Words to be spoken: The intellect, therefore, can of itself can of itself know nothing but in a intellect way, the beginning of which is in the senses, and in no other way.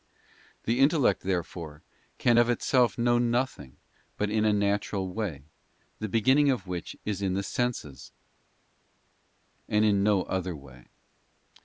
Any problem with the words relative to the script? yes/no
yes